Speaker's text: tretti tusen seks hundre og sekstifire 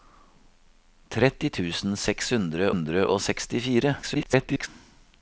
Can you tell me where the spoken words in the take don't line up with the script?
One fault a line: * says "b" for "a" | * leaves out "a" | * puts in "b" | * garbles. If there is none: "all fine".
* puts in "hundre"
* garbles